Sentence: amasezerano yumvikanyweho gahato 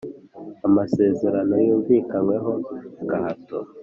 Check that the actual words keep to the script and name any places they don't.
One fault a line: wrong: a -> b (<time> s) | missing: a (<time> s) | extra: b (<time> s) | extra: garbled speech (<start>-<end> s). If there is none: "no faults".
no faults